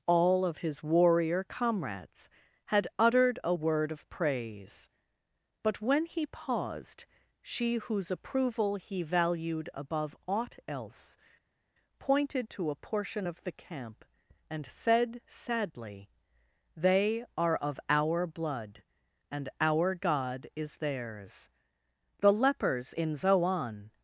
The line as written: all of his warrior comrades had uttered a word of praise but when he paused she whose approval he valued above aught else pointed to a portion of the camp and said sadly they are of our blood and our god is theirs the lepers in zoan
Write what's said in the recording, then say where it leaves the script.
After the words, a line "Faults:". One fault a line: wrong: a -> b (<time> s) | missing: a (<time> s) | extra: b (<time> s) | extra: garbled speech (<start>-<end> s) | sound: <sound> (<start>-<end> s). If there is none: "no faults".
all of his warrior comrades had uttered a word of praise but when he paused she whose approval he valued above aught else pointed to a portion of the camp and said sadly they are of our blood and our god is theirs the lepers in zoan
Faults:
no faults